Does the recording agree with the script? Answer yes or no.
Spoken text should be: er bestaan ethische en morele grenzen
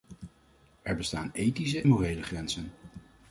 no